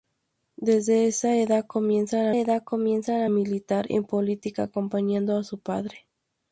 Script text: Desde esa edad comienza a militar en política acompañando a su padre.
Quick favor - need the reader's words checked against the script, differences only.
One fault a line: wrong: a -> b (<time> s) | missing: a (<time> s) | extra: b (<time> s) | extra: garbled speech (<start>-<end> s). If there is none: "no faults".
extra: edad comienza (2.4 s)